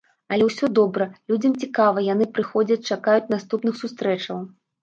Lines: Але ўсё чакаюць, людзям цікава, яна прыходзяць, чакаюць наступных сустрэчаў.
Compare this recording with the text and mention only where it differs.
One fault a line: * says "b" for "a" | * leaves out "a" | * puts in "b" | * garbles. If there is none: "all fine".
* says "добра" for "чакаюць"
* says "яны" for "яна"